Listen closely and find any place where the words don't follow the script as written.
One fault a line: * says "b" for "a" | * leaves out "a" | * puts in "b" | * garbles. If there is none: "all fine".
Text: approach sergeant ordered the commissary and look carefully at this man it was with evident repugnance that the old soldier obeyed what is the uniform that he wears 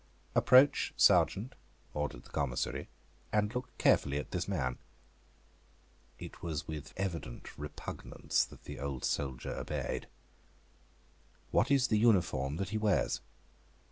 all fine